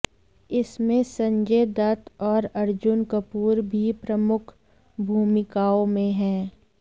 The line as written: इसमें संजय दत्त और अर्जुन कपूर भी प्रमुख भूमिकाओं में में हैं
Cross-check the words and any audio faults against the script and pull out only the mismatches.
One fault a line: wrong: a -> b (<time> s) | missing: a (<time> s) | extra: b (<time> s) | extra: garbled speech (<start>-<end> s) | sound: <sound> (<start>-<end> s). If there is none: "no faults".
missing: में (6.1 s)